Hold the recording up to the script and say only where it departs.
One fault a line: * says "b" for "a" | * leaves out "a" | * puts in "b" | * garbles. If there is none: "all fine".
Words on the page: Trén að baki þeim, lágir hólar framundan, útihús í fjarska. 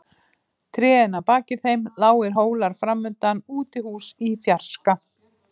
all fine